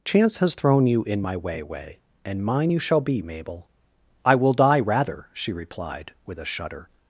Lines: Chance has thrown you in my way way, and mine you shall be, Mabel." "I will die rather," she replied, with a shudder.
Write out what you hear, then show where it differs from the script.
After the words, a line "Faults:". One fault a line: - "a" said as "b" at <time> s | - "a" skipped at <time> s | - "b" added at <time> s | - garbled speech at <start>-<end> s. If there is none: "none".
Chance has thrown you in my way way, and mine you shall be, Mabel." "I will die rather," she replied, with a shudder.
Faults:
none